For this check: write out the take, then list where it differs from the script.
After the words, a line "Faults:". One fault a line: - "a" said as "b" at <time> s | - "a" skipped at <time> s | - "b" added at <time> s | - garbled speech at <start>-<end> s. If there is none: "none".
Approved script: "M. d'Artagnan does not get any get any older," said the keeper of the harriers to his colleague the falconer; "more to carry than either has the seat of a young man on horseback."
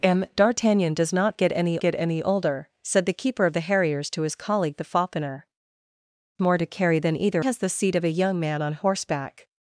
"M. d'Artagnan does not get any get any older," said the keeper of the harriers to his colleague the falconer; "more to carry than either has the seat of a young man on horseback."
Faults:
none